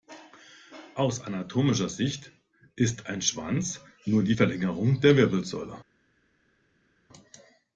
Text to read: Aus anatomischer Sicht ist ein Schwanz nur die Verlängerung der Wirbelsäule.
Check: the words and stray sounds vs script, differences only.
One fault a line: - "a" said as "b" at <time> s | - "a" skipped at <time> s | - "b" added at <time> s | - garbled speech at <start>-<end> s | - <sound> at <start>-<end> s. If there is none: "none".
none